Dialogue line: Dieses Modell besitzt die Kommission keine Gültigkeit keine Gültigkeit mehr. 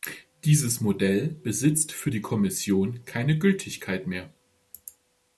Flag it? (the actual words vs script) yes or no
yes